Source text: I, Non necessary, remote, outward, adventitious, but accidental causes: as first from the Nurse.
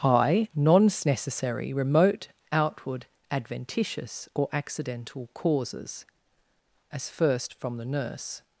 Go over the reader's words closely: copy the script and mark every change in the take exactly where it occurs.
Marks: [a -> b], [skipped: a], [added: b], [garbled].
I, Non necessary, remote, outward, adventitious, [but -> or] accidental causes: as first from the Nurse.